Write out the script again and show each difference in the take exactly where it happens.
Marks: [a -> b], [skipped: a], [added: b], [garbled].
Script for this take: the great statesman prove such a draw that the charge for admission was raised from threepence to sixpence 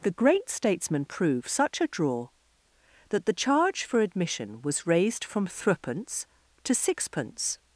the great statesman prove such a draw that the charge for admission was raised from threepence to sixpence